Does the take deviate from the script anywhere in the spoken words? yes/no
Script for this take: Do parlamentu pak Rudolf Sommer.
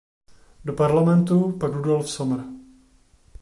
no